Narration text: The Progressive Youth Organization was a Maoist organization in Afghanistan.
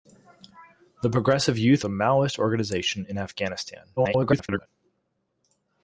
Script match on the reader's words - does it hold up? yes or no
no